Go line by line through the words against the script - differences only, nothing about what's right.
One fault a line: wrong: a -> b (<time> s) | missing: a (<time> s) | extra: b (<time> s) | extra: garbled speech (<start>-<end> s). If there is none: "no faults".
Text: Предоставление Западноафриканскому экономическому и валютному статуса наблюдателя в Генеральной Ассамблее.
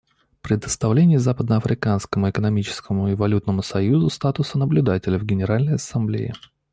extra: союзу (3.6 s)